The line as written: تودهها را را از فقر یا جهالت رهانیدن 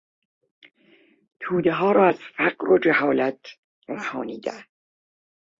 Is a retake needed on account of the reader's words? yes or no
yes